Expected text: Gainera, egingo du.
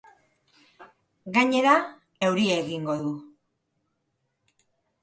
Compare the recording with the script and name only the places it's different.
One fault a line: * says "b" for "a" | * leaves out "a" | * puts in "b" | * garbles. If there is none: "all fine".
* puts in "euria"